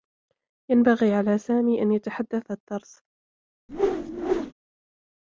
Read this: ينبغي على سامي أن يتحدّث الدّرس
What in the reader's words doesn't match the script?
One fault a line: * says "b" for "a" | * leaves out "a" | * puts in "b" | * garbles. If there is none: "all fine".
all fine